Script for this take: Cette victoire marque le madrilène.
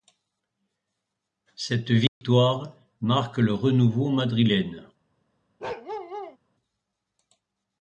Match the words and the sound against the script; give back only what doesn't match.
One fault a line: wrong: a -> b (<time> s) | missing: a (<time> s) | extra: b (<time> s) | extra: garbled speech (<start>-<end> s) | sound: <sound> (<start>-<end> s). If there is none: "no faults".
sound: dropout (2.1-2.2 s)
extra: renouveau (3.5 s)
sound: bark (5.6-6.4 s)